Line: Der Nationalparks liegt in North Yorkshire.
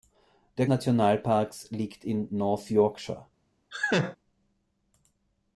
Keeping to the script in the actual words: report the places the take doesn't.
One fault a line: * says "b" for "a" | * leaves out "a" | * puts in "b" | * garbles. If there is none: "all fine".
all fine